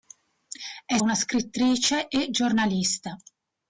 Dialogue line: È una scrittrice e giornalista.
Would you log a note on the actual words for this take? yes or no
no